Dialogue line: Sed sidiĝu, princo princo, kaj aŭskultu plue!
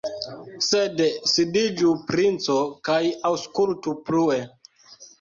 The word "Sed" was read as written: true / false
true